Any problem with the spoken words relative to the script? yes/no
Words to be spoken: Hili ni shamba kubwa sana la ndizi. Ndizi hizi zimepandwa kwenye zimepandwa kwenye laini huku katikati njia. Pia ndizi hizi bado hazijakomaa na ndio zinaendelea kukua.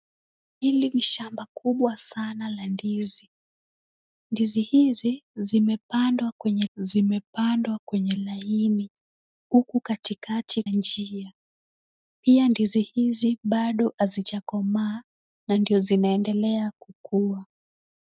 no